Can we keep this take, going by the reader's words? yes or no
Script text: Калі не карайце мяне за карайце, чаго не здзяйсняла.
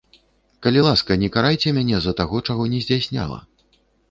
no